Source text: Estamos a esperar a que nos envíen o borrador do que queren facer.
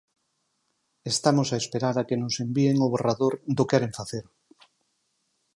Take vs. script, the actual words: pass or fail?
fail